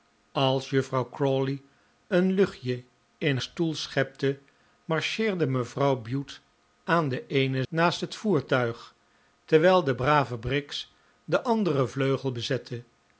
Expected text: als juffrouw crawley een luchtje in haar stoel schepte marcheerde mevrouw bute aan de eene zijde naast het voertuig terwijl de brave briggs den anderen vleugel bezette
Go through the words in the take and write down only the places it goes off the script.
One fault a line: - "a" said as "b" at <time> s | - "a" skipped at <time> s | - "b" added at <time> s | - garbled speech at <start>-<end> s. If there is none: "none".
- "haar" skipped at 3.4 s
- "zijde" skipped at 7.6 s